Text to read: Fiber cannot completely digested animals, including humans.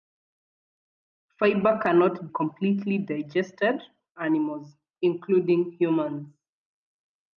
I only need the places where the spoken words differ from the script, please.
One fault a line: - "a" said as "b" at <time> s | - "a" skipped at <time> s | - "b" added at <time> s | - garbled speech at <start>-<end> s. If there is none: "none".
none